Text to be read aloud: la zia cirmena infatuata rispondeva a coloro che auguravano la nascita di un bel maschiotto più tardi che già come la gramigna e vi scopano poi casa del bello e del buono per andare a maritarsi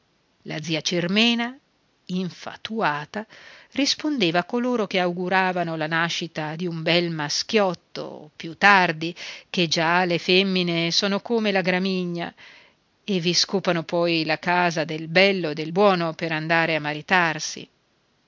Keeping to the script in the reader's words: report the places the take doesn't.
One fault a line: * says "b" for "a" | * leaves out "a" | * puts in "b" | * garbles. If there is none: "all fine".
* puts in "le femmine sono"
* puts in "la"